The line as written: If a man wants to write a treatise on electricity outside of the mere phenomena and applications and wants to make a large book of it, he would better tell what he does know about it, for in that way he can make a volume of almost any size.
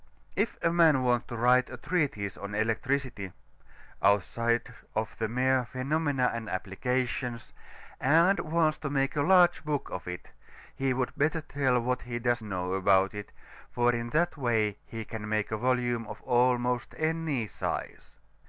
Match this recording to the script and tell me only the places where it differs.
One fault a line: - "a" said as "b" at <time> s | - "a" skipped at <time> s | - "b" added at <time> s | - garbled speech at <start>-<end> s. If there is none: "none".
none